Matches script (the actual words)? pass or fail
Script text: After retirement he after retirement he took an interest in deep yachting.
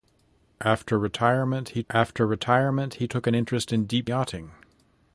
pass